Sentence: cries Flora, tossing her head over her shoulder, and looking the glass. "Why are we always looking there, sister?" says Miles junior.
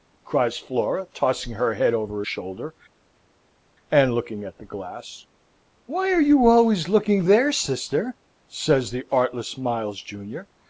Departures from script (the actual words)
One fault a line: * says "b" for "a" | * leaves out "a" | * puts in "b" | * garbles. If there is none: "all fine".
* puts in "at"
* says "you" for "we"
* puts in "the artless"